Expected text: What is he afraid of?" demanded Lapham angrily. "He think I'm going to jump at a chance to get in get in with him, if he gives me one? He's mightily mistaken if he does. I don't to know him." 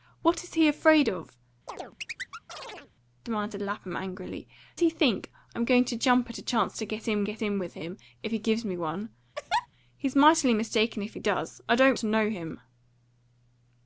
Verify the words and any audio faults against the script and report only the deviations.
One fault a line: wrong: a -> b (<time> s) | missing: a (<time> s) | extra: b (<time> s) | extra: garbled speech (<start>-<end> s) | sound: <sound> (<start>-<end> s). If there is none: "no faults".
sound: chirp (1.7-2.9 s)
sound: laugh (9.3-9.7 s)